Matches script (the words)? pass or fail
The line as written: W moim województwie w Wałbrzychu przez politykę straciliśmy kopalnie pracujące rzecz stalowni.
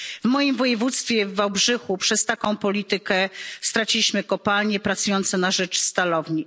fail